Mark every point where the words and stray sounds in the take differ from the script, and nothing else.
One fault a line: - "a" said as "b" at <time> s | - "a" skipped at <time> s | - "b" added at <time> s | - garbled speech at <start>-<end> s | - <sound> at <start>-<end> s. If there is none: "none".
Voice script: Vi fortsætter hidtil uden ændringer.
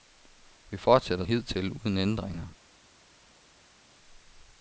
none